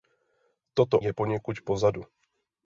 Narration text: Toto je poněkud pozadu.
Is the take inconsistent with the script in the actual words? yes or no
no